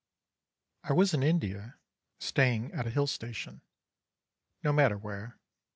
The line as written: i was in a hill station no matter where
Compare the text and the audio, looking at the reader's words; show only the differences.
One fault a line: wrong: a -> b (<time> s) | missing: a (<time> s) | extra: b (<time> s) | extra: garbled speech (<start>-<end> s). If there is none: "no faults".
extra: india staying at (1.2 s)